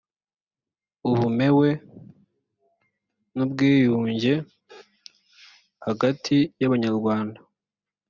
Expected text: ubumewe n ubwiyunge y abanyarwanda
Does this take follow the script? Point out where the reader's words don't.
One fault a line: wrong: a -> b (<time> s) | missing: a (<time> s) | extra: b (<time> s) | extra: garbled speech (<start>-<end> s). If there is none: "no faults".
extra: hagati (5.9 s)